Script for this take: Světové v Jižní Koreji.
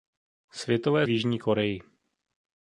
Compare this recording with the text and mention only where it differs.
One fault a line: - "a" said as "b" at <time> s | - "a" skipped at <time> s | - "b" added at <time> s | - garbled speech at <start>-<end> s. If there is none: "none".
none